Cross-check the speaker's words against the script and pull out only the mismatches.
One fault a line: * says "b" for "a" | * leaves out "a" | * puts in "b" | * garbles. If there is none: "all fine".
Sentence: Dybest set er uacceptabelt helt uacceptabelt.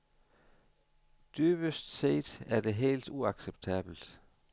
* says "det" for "uacceptabelt"